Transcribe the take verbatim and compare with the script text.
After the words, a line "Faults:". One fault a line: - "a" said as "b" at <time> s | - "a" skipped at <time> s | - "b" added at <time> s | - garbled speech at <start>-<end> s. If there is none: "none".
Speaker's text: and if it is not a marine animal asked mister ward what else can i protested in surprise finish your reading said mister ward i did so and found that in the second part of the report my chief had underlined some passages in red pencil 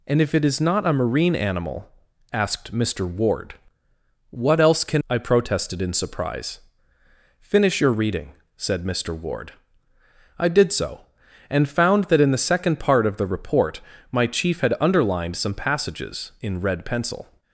and if it is not a marine animal asked mister ward what else can i protested in surprise finish your reading said mister ward i did so and found that in the second part of the report my chief had underlined some passages in red pencil
Faults:
none